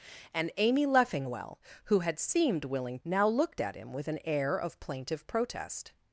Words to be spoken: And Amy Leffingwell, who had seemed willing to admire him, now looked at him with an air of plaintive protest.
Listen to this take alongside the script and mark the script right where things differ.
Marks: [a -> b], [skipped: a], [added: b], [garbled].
And Amy Leffingwell, who had seemed willing [skipped: to admire him,] now looked at him with an air of plaintive protest.